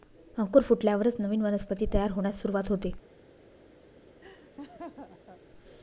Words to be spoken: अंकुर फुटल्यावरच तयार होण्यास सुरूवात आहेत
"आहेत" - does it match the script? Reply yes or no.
no